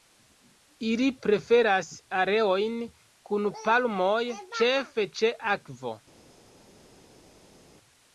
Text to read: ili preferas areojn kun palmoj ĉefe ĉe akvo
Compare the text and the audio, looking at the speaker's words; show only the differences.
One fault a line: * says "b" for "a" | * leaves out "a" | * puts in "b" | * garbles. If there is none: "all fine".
all fine